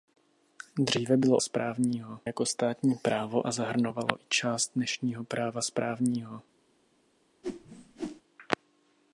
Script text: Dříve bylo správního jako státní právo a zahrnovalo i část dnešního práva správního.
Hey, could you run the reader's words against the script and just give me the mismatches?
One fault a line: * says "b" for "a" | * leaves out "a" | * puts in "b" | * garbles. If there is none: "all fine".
all fine